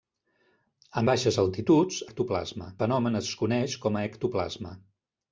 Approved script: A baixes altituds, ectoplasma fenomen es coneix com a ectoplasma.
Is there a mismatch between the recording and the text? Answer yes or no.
no